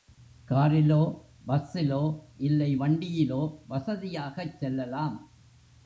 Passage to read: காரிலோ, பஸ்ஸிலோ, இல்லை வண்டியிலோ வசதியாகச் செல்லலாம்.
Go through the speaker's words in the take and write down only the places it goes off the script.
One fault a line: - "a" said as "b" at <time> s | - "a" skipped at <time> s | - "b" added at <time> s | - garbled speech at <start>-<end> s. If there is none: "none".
none